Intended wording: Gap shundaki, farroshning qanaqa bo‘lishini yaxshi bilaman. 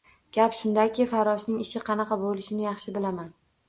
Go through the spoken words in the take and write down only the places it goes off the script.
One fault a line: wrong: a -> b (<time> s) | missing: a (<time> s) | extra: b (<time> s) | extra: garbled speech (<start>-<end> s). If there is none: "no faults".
extra: ishi (1.7 s)